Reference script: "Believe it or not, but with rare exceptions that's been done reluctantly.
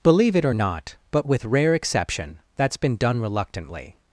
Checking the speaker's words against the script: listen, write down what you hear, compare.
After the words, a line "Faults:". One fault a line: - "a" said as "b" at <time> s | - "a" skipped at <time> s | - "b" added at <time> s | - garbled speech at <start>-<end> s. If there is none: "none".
"Believe it or not, but with rare exception that's been done reluctantly.
Faults:
- "exceptions" said as "exception" at 1.7 s